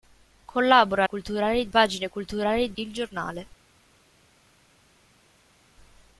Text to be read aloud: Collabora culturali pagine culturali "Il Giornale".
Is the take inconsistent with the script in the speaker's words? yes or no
no